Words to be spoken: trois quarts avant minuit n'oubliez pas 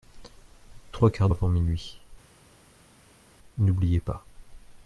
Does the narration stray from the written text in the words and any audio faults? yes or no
no